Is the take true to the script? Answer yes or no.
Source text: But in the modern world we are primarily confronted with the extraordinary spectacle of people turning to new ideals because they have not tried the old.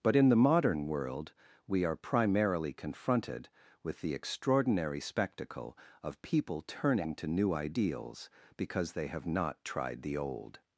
yes